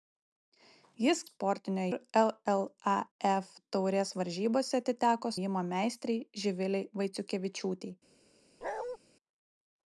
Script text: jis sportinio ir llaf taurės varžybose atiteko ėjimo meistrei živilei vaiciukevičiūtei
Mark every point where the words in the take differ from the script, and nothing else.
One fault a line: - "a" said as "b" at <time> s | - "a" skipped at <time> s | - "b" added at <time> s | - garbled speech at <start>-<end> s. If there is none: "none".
none